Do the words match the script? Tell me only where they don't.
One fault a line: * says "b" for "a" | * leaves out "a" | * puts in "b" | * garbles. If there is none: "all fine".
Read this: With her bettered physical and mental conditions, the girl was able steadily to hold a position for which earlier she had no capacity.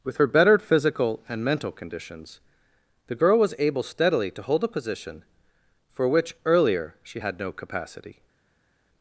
all fine